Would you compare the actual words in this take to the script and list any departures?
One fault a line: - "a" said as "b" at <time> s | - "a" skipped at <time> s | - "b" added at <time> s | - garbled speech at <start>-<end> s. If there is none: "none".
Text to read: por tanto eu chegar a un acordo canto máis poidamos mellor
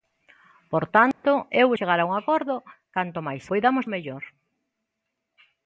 none